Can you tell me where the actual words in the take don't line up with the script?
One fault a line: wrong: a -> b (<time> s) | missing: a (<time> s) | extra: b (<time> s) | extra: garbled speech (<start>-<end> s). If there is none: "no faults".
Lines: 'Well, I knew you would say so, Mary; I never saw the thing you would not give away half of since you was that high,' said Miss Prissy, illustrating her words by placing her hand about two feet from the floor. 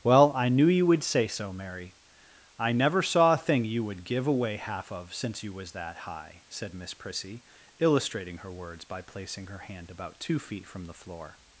wrong: the -> a (3.3 s)
missing: not (4.0 s)